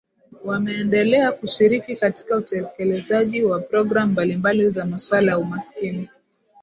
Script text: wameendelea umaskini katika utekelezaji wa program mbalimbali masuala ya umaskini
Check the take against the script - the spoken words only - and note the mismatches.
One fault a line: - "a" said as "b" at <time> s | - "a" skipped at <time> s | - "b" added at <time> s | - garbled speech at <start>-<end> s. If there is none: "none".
- "umaskini" said as "kushiriki" at 1.3 s
- "za" added at 4.7 s